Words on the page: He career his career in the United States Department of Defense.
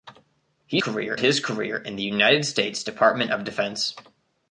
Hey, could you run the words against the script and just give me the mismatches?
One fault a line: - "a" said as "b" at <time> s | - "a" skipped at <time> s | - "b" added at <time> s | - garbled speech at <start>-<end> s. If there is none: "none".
none